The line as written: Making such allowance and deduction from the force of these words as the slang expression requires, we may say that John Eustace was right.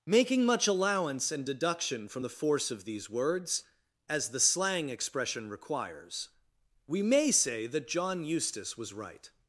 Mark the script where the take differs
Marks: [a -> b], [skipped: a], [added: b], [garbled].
Making [such -> much] allowance and deduction from the force of these words as the slang expression requires, we may say that John Eustace was right.